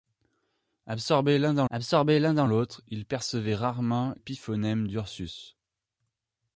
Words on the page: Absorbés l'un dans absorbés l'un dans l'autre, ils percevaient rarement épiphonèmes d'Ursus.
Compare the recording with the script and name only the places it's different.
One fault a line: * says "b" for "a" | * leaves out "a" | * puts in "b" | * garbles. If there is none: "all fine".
all fine